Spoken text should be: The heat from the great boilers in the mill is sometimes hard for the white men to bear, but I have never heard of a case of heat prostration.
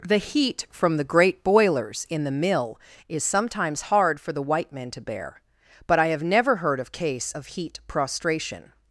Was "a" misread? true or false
true